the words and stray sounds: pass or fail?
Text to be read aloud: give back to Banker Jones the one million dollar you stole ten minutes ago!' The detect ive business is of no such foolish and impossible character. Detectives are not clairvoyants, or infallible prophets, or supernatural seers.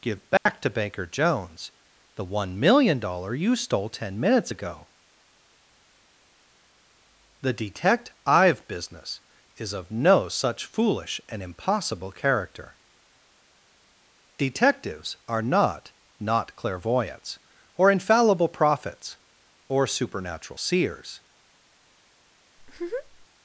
fail